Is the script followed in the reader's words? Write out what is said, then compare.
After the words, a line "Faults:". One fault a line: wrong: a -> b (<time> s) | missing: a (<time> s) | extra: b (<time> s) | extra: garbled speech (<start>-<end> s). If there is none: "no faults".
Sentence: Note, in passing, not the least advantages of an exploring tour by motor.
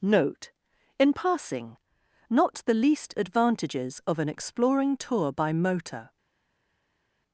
Note, in passing, not the least advantages of an exploring tour by motor.
Faults:
no faults